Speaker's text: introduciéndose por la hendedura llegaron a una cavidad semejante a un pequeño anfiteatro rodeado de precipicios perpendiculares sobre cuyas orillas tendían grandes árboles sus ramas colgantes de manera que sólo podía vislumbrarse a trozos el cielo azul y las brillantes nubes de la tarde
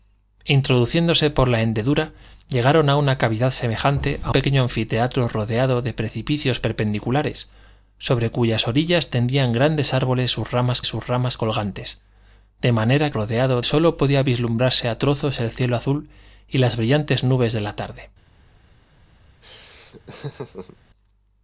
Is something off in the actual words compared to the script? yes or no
yes